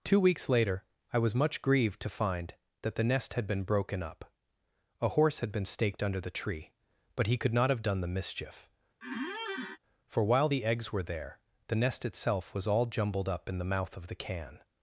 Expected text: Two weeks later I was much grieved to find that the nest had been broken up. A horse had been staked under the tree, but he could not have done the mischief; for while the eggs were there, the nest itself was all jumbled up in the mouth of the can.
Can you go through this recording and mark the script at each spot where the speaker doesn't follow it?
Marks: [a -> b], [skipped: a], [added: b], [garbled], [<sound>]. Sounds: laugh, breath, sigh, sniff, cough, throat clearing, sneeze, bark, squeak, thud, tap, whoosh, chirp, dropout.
Two weeks later I was much grieved to find that the nest had been broken up. A horse had been staked under the tree, but he could not have done the mischief; [squeak] for while the eggs were there, the nest itself was all jumbled up in the mouth of the can.